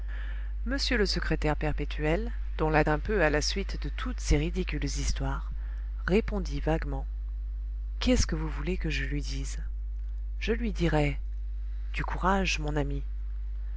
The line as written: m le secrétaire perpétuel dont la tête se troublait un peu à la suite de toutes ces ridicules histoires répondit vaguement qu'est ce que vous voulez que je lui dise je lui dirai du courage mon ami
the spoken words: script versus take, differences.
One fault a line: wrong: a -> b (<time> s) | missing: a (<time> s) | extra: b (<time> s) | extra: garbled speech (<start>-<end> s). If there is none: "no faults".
missing: tête se troublait (2.8 s)